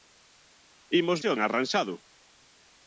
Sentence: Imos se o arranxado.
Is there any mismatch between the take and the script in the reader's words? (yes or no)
no